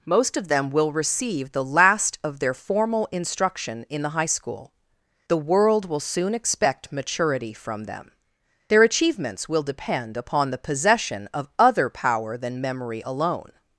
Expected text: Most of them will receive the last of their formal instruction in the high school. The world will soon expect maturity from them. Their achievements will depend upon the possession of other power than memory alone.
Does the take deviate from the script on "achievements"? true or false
false